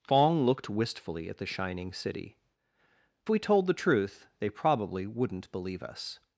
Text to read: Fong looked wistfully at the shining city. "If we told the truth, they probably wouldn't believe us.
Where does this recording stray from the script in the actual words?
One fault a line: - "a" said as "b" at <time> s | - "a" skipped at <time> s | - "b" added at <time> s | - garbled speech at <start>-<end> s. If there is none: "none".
- "If" skipped at 2.4 s